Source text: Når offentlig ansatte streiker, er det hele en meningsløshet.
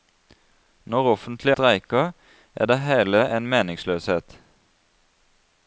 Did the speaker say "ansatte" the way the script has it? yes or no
no